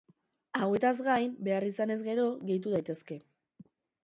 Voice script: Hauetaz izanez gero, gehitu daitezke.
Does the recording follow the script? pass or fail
fail